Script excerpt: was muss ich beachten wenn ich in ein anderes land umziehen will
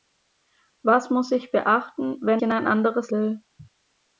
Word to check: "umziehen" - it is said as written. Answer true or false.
false